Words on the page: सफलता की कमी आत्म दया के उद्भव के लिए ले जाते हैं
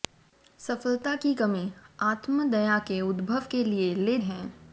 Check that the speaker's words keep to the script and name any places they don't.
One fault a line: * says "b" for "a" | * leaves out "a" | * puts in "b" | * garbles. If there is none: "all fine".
* leaves out "जाते"